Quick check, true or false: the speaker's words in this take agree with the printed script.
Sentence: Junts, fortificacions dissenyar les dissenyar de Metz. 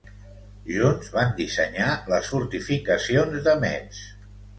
false